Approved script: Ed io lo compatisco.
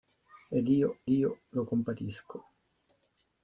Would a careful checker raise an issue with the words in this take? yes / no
yes